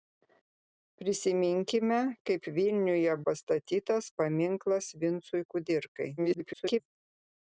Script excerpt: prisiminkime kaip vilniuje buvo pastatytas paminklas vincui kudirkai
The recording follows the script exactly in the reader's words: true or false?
false